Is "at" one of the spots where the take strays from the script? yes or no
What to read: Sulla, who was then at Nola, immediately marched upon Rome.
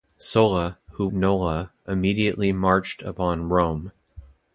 yes